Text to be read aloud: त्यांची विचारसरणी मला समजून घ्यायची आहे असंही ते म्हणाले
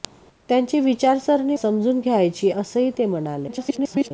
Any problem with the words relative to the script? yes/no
yes